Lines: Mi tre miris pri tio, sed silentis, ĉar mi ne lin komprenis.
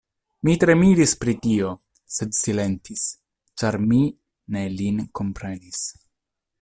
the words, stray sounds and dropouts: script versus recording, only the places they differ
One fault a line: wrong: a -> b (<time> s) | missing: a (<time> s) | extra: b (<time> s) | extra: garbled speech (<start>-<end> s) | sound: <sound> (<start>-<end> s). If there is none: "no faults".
no faults